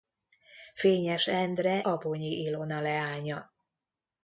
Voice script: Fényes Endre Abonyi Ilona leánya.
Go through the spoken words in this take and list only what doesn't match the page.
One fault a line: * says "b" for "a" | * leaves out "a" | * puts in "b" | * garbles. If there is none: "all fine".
all fine